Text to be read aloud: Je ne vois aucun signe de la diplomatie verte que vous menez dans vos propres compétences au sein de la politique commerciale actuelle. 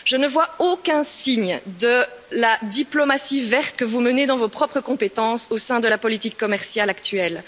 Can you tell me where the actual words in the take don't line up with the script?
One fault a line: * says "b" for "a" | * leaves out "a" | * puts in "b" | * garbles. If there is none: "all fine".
all fine